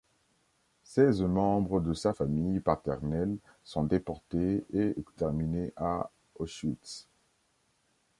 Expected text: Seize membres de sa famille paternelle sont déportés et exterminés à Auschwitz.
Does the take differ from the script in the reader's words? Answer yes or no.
no